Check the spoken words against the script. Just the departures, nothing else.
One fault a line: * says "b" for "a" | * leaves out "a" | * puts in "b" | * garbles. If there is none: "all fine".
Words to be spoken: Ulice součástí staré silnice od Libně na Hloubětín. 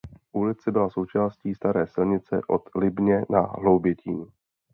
* puts in "byla"